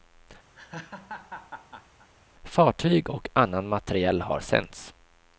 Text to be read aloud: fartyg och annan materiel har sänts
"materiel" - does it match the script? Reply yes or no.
yes